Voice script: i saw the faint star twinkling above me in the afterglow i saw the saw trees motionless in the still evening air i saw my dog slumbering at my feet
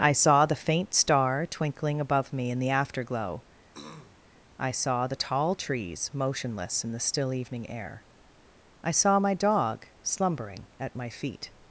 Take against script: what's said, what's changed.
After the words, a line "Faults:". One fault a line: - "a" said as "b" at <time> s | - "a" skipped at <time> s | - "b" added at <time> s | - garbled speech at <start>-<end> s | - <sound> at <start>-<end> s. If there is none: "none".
i saw the faint star twinkling above me in the afterglow i saw the tall trees motionless in the still evening air i saw my dog slumbering at my feet
Faults:
- throat clearing at 3.7-4.2 s
- "saw" said as "tall" at 5.1 s